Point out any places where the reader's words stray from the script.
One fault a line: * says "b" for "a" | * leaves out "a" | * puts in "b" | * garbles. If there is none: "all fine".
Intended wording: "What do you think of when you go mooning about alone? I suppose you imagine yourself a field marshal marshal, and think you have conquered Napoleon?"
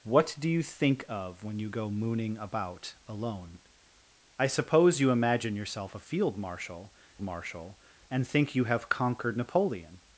all fine